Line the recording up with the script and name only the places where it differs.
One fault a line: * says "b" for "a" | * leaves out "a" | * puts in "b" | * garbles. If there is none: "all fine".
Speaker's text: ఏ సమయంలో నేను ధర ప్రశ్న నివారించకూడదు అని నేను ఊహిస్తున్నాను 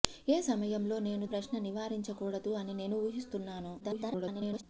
* leaves out "ధర"
* garbles